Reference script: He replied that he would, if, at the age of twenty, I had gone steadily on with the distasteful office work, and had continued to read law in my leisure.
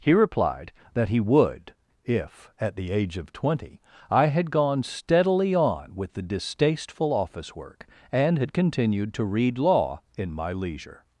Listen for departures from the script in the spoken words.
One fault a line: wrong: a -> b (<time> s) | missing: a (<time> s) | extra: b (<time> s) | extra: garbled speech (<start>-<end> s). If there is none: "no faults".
no faults